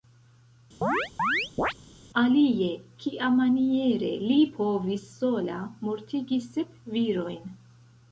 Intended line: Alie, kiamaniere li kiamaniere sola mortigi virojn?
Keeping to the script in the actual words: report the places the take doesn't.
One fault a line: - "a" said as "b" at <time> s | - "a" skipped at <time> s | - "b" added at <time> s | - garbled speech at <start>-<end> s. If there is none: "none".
- "kiamaniere" said as "povis" at 4.5 s
- "sep" added at 6.5 s